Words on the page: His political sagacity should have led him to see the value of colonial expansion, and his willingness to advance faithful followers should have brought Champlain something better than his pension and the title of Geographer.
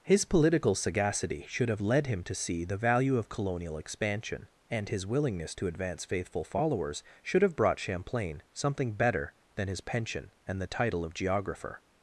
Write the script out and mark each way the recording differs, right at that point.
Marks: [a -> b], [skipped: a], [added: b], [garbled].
His political sagacity should have led him to see the value of colonial expansion, and his willingness to advance faithful followers should have brought Champlain something better than his pension and the title of Geographer.